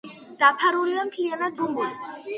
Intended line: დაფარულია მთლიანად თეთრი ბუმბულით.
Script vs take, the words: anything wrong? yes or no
yes